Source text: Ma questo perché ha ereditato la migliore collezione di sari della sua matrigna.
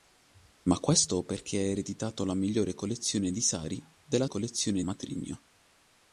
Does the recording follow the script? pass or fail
fail